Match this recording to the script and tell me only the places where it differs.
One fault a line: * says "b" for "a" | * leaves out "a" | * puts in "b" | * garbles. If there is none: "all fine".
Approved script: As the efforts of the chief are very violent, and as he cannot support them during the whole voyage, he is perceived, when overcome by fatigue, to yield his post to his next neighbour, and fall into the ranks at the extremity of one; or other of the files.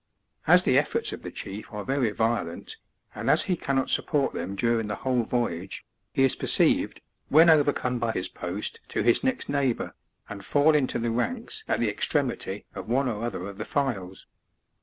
* leaves out "fatigue to yield"